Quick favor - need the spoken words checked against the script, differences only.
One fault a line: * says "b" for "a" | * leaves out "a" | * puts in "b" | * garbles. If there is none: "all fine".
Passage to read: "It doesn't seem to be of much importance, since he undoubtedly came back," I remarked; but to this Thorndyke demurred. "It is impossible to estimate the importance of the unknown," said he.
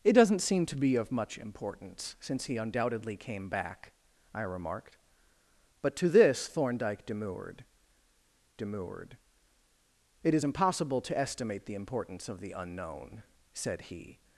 * puts in "demurred"